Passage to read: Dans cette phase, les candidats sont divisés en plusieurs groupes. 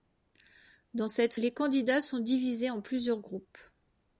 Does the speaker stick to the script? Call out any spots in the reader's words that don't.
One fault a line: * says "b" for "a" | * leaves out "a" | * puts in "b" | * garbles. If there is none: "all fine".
* leaves out "phase"